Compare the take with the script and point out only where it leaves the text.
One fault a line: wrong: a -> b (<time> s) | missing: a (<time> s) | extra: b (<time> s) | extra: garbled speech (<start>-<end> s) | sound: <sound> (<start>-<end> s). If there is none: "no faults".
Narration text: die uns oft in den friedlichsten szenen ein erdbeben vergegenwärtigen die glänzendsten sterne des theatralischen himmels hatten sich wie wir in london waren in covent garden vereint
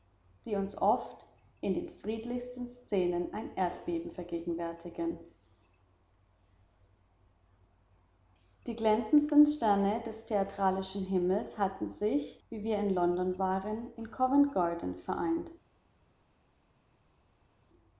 no faults